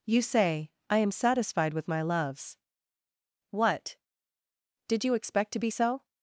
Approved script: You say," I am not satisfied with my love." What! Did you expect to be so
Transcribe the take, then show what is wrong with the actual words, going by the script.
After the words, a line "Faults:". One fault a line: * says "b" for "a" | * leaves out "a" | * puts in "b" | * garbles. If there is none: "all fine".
You say," I am satisfied with my loves." What! Did you expect to be so
Faults:
* leaves out "not"
* says "loves" for "love"